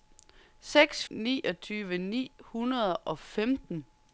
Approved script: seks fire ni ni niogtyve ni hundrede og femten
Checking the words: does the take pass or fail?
fail